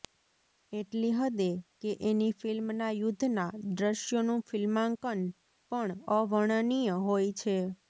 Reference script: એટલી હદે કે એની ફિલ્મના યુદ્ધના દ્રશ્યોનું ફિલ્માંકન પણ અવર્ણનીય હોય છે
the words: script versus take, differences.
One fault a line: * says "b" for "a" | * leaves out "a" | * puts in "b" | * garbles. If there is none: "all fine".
all fine